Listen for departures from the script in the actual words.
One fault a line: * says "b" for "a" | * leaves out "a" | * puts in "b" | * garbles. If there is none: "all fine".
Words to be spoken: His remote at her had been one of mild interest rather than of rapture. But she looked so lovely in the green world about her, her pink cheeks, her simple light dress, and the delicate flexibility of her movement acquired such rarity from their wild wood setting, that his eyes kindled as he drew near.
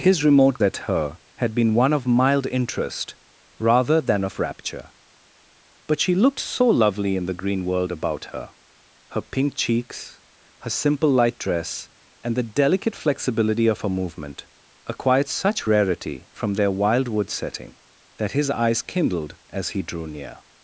all fine